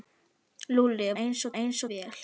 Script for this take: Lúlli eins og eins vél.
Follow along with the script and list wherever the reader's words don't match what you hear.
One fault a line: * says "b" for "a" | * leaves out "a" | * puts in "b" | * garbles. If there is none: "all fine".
all fine